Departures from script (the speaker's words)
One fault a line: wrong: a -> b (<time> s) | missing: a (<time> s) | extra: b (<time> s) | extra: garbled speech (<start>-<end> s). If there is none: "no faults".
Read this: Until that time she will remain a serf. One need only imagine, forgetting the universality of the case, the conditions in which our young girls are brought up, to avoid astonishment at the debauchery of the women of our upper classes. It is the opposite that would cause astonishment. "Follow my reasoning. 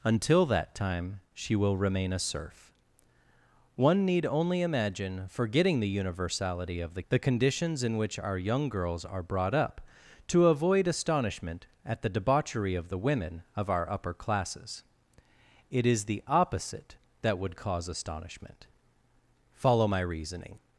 missing: case (7.0 s)